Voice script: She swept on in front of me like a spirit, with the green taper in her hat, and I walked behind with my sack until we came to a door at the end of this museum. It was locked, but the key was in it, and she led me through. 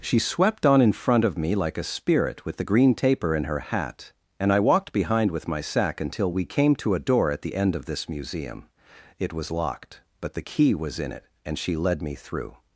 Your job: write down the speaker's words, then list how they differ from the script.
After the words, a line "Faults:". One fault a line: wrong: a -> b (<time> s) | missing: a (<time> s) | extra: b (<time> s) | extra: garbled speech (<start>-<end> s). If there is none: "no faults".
She swept on in front of me like a spirit, with the green taper in her hat, and I walked behind with my sack until we came to a door at the end of this museum. It was locked, but the key was in it, and she led me through.
Faults:
no faults